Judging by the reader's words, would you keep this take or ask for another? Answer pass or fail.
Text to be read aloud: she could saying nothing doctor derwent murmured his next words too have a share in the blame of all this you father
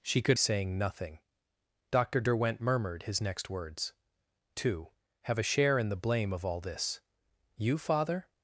pass